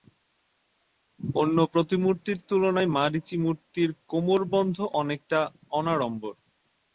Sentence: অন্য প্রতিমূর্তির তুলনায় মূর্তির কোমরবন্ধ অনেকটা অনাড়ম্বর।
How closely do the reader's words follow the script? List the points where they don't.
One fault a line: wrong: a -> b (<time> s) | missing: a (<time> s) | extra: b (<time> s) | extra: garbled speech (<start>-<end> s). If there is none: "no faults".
extra: মারীচী (3.0 s)